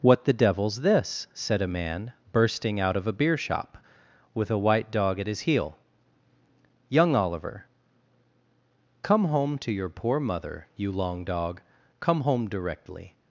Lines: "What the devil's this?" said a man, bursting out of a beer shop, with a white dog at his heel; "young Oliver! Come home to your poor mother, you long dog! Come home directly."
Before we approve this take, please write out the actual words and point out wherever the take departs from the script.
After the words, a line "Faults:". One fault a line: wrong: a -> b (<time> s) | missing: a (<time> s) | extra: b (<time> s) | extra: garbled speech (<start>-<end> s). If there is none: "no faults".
"What the devil's this?" said a man, bursting out of a beer shop, with a white dog at his heel; "young Oliver! Come home to your poor mother, you long dog! Come home directly."
Faults:
no faults